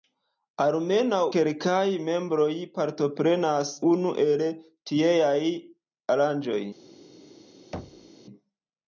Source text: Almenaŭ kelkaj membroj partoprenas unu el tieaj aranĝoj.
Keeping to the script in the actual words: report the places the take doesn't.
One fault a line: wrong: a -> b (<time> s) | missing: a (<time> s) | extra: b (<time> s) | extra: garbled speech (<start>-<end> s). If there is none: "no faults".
no faults